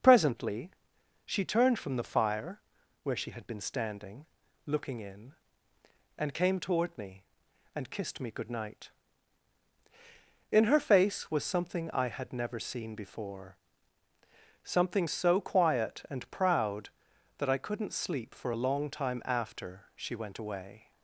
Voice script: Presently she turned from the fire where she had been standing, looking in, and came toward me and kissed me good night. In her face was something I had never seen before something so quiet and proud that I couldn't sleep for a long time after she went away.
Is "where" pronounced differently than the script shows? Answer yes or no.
no